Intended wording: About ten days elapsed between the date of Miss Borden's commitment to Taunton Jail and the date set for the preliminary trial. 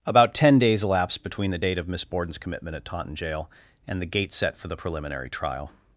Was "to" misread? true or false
true